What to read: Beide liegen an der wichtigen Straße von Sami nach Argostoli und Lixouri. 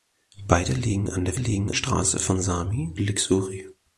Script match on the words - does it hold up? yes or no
no